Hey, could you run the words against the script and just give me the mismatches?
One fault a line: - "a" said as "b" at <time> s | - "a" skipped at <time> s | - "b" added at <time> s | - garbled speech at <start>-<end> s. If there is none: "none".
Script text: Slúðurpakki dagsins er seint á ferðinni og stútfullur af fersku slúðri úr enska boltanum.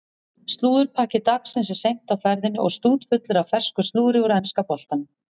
none